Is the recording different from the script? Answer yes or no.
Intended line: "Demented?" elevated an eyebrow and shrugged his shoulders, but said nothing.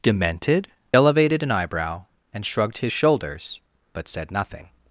no